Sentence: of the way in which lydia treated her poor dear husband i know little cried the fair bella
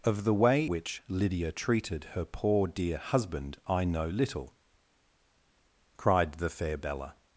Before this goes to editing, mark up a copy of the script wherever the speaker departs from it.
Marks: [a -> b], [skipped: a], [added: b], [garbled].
of the way [skipped: in] which lydia treated her poor dear husband i know little cried the fair bella